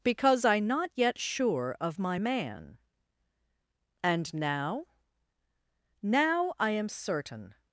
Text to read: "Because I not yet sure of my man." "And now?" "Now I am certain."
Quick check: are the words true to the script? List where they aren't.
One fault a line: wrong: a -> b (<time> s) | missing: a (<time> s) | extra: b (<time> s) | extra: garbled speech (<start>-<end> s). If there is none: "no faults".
no faults